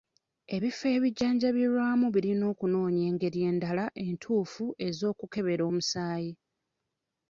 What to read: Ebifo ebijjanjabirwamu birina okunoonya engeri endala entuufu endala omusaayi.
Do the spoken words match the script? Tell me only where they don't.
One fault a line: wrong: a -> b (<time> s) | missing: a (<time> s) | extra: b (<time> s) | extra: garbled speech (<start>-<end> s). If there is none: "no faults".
wrong: endala -> ez'okukebera (4.9 s)